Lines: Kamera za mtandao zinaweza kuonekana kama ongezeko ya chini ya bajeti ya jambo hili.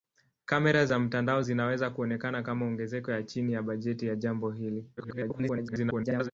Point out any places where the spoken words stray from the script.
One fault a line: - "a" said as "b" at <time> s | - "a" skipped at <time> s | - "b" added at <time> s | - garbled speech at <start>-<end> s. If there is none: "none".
- garbled speech at 5.0-6.3 s